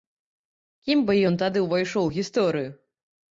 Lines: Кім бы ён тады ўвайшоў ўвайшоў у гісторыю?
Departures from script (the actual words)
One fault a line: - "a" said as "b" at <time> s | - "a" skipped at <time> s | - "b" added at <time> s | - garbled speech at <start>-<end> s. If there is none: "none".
- "ўвайшоў" skipped at 2.1 s